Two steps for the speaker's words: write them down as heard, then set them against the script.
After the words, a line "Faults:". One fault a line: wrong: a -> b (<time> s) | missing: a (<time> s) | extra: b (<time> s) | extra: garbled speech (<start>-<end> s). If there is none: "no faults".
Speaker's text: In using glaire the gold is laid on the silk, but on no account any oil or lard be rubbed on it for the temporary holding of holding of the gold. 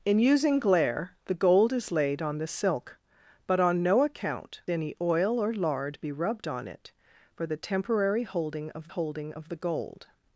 In using glaire the gold is laid on the silk, but on no account any oil or lard be rubbed on it for the temporary holding of holding of the gold.
Faults:
no faults